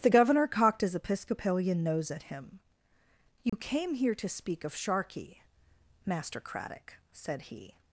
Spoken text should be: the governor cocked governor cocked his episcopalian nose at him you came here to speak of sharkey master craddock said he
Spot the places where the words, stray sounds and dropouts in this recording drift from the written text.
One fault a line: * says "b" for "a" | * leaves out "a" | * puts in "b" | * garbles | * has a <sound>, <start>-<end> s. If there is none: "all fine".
* leaves out "governor cocked"
* has a dropout, 3.5-3.5 s